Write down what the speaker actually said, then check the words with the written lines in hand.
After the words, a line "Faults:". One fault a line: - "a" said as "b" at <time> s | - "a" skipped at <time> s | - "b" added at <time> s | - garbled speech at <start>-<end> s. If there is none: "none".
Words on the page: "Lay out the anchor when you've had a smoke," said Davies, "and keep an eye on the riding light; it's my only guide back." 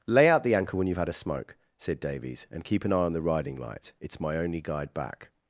"Lay out the anchor when you've had a smoke," said Davies, "and keep an eye on the riding light; it's my only guide back."
Faults:
none